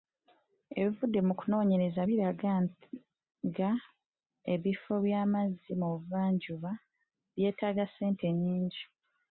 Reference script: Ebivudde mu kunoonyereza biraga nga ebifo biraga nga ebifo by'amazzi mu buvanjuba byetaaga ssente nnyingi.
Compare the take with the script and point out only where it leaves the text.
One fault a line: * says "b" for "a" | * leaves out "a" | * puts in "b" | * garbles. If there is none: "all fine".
* leaves out "biraga nga ebifo"